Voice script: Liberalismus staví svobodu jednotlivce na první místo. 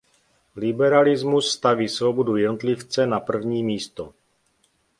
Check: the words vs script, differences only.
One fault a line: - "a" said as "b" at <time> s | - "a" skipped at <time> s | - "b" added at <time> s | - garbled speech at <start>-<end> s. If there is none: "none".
none